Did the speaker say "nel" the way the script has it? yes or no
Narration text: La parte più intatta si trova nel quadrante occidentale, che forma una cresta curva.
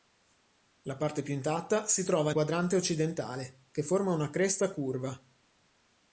no